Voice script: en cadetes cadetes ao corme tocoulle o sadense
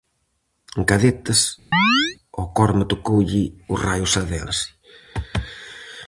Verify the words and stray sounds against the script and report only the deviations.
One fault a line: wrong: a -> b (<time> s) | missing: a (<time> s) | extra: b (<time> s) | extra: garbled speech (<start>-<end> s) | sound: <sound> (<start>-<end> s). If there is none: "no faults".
missing: cadetes (1.4 s)
sound: chirp (1.7-2.2 s)
extra: raio (3.9 s)